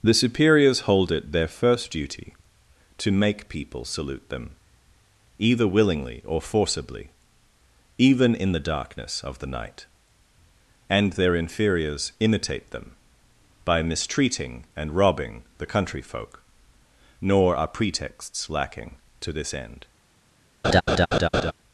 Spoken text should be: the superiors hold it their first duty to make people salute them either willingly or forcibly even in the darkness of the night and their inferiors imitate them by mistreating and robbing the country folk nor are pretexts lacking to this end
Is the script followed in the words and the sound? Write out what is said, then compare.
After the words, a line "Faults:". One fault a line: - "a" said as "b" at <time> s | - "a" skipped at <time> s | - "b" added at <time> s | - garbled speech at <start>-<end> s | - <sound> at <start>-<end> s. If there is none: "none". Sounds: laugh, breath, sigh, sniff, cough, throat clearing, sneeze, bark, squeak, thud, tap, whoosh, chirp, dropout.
the superiors hold it their first duty to make people salute them either willingly or forcibly even in the darkness of the night and their inferiors imitate them by mistreating and robbing the country folk nor are pretexts lacking to this end
Faults:
- laugh at 20.6-21.5 s